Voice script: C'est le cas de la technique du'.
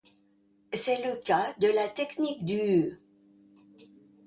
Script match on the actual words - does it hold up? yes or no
yes